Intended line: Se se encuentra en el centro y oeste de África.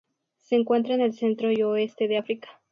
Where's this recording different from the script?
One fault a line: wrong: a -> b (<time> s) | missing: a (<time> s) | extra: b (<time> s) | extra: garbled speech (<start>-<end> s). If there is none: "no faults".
missing: se (0.6 s)